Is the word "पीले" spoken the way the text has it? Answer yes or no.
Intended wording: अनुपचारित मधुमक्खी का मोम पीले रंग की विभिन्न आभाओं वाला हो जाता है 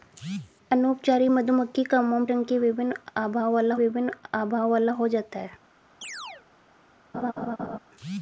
no